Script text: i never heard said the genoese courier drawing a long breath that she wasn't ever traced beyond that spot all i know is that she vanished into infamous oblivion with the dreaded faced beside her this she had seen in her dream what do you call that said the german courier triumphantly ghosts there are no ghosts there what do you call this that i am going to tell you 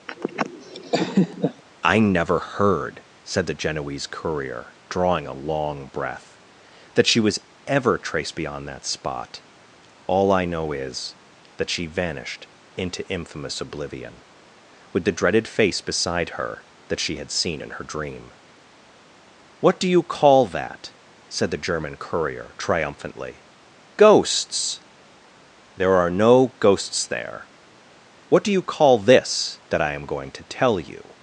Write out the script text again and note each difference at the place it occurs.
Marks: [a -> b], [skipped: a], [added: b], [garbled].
i never heard said the genoese courier drawing a long breath that she [wasn't -> was] ever traced beyond that spot all i know is that she vanished into infamous oblivion with the dreaded [faced -> face] beside her [this -> that] she had seen in her dream what do you call that said the german courier triumphantly ghosts there are no ghosts there what do you call this that i am going to tell you